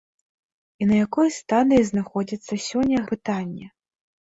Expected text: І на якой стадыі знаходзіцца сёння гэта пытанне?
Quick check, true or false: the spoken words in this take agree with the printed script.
false